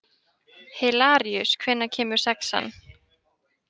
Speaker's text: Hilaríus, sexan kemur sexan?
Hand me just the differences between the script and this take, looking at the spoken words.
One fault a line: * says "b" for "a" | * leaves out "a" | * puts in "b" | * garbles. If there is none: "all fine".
* says "hvenær" for "sexan"